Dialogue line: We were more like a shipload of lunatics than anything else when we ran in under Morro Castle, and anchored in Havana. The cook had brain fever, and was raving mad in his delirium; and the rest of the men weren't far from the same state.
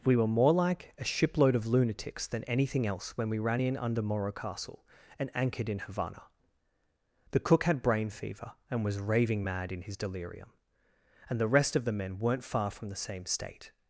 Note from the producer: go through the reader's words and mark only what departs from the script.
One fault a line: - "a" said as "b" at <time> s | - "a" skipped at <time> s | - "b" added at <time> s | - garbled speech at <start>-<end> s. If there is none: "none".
none